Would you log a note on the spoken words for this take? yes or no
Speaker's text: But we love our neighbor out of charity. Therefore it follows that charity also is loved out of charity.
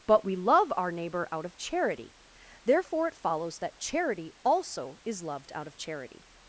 no